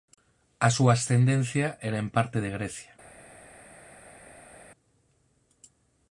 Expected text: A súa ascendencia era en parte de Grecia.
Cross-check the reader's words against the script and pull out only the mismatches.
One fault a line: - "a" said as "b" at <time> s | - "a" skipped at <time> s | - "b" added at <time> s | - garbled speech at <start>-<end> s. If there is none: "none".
none